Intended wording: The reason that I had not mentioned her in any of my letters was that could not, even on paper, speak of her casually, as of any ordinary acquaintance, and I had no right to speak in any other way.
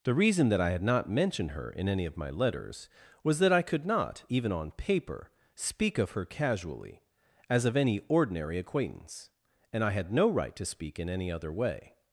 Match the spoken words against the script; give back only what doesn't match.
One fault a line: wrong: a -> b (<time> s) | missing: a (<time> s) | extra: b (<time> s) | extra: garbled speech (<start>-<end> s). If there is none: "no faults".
extra: I (3.5 s)